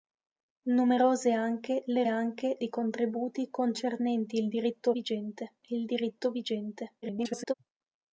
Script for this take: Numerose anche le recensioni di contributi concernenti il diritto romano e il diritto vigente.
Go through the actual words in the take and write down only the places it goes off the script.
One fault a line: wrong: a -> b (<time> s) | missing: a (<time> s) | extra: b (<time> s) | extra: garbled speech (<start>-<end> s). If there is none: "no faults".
wrong: recensioni -> anche (2.1 s)
wrong: romano -> vigente (4.9 s)
extra: garbled speech (7.0-7.5 s)